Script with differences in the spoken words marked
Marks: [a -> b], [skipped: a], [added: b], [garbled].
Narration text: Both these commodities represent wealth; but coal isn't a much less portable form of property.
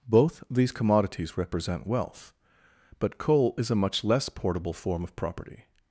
Both these commodities represent wealth; but coal [isn't -> is] a much less portable form of property.